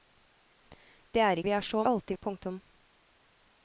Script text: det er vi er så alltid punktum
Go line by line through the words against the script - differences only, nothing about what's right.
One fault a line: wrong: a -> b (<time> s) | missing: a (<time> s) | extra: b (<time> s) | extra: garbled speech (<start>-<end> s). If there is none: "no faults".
no faults